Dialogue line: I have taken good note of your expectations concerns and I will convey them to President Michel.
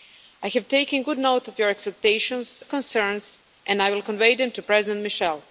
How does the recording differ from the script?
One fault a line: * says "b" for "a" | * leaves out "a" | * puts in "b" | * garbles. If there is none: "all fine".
all fine